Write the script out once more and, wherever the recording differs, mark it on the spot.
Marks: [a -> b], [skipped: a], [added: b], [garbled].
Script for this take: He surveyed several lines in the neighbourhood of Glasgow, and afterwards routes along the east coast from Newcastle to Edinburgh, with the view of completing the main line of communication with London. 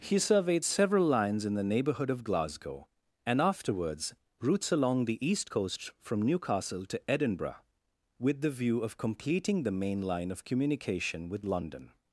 He surveyed several lines in the neighbourhood of Glasgow, and afterwards routes along the east coast from Newcastle to Edinburgh, with the view of completing the main line of communication with London.